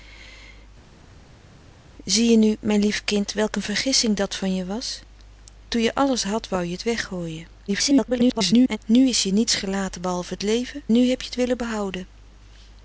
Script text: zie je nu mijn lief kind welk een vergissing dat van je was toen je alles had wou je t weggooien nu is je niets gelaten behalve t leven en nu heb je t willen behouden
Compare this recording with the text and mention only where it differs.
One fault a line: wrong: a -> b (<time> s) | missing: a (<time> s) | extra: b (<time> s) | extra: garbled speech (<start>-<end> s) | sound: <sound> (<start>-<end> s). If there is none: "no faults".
extra: garbled speech (7.7-8.8 s)
missing: en (10.8 s)